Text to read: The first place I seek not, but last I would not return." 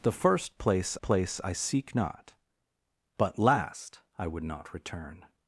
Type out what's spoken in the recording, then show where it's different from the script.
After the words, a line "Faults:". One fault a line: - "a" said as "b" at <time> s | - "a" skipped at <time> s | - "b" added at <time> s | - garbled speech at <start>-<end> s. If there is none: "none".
The first place place I seek not, but last I would not return."
Faults:
- "place" added at 1.0 s